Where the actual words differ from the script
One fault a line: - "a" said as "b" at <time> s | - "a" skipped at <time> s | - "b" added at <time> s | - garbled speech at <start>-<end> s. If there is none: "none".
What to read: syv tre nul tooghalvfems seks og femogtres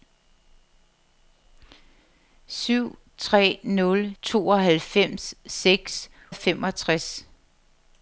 none